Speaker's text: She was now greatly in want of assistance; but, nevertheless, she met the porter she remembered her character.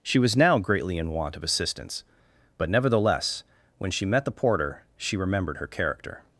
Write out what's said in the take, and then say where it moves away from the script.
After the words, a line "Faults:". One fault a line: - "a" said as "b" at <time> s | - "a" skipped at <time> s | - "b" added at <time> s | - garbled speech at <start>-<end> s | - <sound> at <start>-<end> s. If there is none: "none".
She was now greatly in want of assistance; but, nevertheless, when she met the porter she remembered her character.
Faults:
- "when" added at 3.8 s